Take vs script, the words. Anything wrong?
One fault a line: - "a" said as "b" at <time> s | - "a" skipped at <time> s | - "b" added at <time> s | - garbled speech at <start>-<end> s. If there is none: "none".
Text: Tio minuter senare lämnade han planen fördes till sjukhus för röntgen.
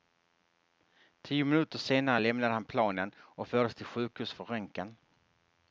- "och" added at 3.2 s